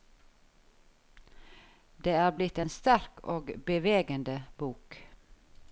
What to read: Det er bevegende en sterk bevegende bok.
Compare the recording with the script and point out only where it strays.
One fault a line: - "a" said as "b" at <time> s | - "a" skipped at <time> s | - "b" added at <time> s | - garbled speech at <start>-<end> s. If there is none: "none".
- "bevegende" said as "blitt" at 2.4 s
- "og" added at 3.4 s